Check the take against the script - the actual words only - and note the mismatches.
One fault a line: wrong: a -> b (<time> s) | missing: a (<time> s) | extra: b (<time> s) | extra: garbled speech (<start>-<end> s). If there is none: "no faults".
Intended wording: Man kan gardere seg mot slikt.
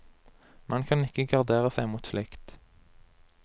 extra: ikke (1.0 s)